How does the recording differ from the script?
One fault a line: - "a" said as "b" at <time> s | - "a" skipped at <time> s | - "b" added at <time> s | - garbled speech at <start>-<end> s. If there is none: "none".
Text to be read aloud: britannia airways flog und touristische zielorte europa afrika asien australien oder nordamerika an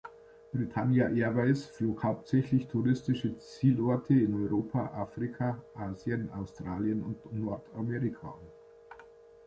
- "und" said as "hauptsächlich" at 2.0 s
- "in" added at 4.1 s
- "oder" said as "und" at 7.0 s